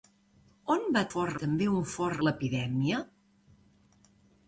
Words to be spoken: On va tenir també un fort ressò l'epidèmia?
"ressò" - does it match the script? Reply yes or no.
no